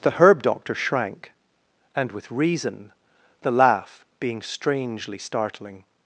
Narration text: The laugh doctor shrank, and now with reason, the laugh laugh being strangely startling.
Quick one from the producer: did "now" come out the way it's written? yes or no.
no